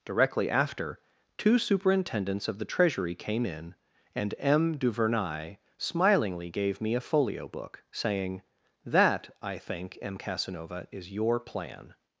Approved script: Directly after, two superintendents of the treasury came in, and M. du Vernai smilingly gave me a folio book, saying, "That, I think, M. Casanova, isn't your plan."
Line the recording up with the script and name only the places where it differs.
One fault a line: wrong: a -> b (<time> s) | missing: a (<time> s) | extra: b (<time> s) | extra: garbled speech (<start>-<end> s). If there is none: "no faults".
wrong: isn't -> is (10.9 s)